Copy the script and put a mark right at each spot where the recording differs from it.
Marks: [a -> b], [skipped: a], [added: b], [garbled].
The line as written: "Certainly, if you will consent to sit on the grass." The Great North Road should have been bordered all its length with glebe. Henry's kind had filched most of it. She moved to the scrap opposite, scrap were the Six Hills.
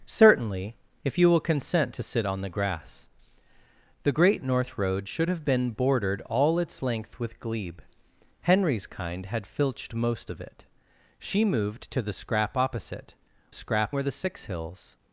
"Certainly, if you will consent to sit on the grass." The Great North Road should have been bordered all its length with glebe. Henry's kind had filched most of it. She moved to the scrap opposite, scrap were the Six Hills.